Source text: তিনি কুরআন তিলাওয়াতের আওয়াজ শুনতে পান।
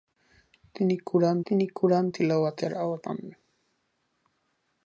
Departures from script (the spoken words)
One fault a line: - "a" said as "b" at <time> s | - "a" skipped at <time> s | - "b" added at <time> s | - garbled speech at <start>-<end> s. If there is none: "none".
- "তিনি কুরআন" added at 1.5 s
- "শুনতে" skipped at 3.0 s